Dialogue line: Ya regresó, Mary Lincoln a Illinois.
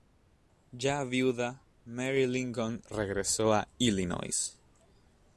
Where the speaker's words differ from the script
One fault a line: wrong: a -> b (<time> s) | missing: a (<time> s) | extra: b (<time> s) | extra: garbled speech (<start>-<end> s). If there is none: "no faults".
wrong: regresó -> viuda (1.0 s)
extra: regresó (2.9 s)